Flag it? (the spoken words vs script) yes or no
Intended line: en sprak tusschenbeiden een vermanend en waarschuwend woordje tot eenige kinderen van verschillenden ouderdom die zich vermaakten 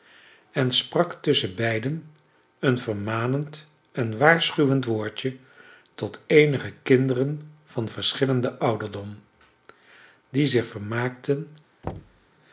no